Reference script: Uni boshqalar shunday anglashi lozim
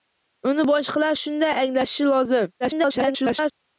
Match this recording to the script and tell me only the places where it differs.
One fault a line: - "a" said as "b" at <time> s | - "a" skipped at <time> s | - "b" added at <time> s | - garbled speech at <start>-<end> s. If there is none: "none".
- garbled speech at 2.6-3.5 s